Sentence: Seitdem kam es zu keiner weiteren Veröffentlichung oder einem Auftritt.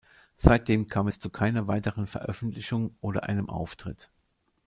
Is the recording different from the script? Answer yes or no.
no